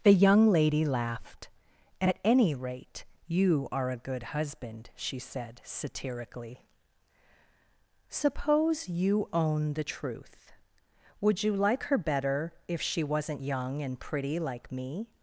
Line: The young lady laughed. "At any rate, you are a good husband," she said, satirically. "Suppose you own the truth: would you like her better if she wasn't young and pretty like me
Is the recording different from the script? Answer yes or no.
no